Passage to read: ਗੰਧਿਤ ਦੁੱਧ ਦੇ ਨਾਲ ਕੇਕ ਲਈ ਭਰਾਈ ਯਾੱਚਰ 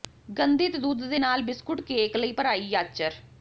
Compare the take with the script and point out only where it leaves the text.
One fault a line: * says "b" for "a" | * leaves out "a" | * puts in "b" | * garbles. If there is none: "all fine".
* puts in "ਬਿਸਕੁਟ"